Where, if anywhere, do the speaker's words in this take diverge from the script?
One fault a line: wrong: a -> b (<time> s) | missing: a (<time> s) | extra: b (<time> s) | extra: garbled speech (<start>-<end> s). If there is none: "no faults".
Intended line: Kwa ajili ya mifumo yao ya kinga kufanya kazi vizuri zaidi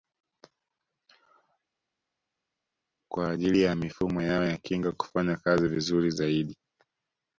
no faults